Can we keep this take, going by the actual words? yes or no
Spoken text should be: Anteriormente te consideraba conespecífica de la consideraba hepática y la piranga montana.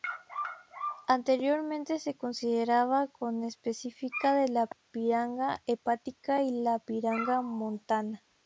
no